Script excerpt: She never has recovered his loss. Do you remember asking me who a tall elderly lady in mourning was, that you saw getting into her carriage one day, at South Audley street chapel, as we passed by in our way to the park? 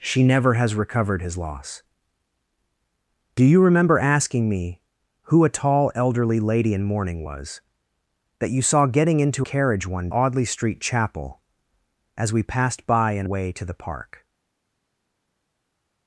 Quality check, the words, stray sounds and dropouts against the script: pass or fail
fail